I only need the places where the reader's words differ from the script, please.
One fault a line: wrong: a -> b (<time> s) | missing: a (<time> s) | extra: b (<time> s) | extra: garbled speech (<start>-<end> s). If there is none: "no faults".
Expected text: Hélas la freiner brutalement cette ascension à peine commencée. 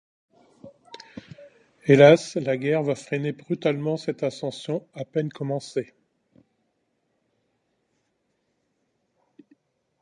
extra: guerre va (2.6 s)